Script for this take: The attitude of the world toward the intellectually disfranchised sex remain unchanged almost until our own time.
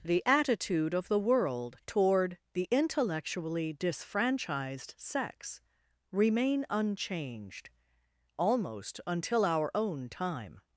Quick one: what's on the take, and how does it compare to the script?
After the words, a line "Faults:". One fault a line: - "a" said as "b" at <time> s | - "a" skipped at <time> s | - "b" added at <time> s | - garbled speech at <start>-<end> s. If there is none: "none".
The attitude of the world toward the intellectually disfranchised sex remain unchanged almost until our own time.
Faults:
none